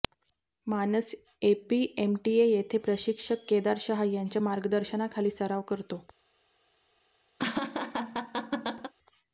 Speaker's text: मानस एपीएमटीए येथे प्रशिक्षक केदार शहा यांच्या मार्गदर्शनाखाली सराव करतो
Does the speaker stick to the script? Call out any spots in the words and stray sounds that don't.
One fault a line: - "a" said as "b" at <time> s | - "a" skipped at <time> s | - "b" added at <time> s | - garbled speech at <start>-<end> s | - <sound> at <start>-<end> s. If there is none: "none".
- laugh at 7.4-8.9 s